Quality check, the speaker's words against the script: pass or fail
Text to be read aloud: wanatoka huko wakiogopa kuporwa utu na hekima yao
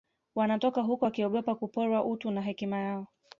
pass